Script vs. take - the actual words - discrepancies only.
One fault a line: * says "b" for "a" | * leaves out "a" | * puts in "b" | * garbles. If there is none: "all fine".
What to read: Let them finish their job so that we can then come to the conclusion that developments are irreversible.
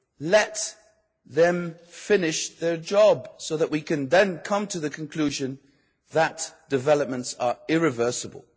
all fine